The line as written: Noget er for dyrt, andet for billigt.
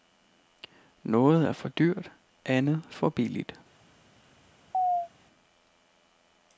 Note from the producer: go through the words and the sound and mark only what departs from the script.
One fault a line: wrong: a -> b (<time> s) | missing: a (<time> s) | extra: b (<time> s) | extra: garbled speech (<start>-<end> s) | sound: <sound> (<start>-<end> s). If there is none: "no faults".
sound: chirp (4.7-5.1 s)